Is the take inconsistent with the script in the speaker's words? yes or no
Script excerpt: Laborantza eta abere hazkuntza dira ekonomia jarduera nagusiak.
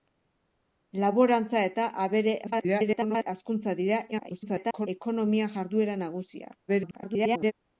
yes